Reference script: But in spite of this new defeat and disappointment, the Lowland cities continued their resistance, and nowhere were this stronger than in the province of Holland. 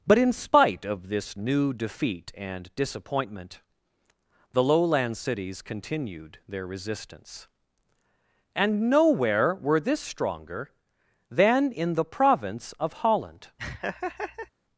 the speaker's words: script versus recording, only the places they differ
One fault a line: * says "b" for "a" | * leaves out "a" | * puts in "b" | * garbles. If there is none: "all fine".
all fine